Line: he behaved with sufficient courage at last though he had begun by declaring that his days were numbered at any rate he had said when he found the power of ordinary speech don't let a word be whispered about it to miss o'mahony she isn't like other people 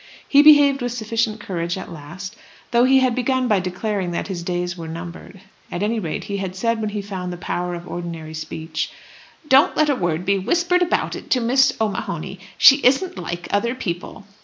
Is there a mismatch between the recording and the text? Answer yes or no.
no